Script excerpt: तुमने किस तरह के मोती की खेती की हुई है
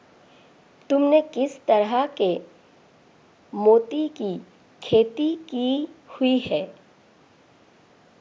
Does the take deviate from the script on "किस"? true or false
false